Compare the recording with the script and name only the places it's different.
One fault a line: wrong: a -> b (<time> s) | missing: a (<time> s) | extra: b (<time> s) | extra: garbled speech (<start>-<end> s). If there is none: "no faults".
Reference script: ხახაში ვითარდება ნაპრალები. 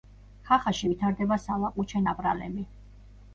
extra: სალაყუჩე (1.4 s)